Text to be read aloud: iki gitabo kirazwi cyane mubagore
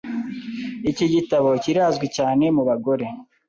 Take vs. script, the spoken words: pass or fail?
pass